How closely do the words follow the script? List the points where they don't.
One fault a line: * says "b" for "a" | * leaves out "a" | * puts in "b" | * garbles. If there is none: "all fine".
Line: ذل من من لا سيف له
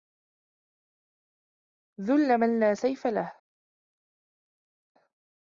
* leaves out "من"